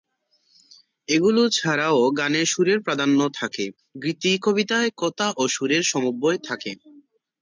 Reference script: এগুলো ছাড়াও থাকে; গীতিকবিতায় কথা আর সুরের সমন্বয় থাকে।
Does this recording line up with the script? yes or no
no